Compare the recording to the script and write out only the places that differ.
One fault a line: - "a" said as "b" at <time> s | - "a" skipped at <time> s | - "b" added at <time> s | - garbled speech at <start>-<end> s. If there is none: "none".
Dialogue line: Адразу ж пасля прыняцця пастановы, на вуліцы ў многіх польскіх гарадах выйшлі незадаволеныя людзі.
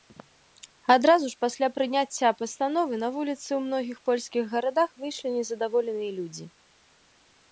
none